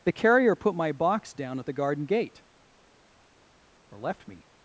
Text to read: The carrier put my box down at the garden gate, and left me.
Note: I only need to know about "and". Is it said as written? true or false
false